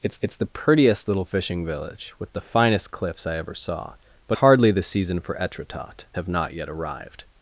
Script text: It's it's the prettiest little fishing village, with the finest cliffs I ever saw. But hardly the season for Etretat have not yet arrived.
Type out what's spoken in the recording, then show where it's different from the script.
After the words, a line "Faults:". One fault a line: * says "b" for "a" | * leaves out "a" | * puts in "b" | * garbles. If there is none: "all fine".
It's it's the prettiest little fishing village, with the finest cliffs I ever saw. But hardly the season for Etretat have not yet arrived.
Faults:
all fine